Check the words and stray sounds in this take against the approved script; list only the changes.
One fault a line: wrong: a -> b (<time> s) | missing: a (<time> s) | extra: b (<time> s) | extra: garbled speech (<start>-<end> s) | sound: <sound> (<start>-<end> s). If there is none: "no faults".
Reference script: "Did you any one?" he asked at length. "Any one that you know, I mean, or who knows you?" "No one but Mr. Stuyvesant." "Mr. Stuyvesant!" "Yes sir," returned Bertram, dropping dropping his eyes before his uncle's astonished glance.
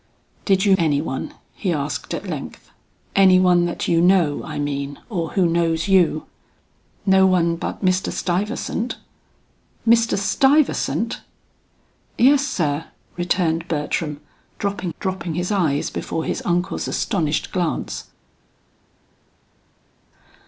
no faults